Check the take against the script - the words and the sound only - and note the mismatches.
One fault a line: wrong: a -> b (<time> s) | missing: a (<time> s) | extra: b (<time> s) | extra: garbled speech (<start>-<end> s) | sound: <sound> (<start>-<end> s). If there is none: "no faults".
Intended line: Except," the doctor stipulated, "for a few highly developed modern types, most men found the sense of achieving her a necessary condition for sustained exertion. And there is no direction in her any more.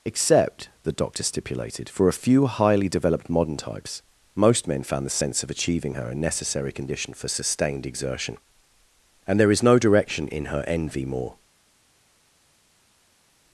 wrong: any -> envy (10.7 s)